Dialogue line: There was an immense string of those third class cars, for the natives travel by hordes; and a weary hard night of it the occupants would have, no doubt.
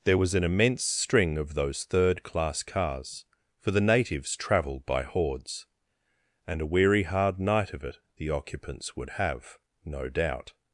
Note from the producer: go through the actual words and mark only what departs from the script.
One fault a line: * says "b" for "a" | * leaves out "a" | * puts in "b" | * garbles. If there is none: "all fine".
* says "travelled" for "travel"